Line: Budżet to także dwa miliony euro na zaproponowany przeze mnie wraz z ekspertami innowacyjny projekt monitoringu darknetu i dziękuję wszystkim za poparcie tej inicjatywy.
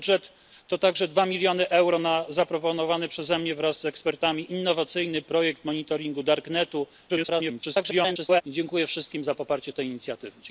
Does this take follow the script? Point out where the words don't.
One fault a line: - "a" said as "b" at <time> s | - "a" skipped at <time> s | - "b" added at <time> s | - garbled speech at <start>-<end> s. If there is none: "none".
- garbled speech at 7.1-8.4 s